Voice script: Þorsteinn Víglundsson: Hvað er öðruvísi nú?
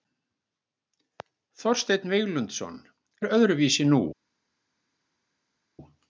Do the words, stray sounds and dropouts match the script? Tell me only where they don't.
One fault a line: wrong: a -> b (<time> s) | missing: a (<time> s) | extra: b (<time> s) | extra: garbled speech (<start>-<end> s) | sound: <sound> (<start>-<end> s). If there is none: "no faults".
missing: Hvað (2.8 s)